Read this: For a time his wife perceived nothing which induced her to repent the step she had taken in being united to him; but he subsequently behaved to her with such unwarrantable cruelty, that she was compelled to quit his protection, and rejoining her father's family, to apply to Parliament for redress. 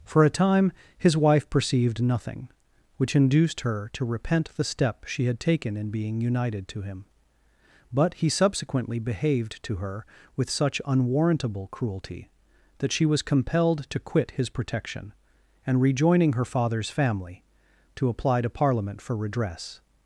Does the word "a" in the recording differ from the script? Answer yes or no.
no